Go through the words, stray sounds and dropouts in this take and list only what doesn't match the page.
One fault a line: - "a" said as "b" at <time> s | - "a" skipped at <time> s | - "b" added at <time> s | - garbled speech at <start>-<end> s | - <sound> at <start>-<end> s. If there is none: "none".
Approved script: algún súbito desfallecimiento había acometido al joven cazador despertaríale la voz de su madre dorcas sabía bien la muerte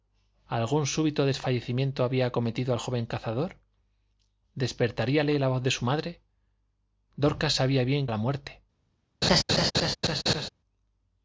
- laugh at 9.2-10.5 s